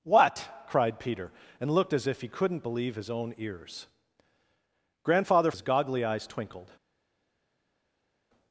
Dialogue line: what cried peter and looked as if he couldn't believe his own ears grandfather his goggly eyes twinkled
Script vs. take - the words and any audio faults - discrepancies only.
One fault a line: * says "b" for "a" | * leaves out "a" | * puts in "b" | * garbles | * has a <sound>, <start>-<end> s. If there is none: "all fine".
all fine